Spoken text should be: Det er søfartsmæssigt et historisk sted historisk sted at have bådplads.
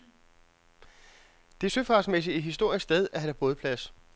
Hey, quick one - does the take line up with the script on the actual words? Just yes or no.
no